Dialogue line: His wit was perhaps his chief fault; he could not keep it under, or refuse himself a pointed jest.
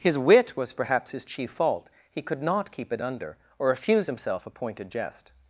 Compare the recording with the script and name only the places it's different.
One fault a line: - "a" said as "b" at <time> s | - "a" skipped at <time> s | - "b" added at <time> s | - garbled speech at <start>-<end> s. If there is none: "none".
none